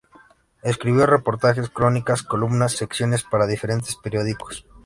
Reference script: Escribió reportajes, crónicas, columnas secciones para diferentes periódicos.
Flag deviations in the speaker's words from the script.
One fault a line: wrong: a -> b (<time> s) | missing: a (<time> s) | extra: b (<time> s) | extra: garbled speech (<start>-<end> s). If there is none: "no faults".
no faults